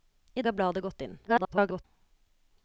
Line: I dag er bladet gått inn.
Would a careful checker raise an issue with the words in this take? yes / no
yes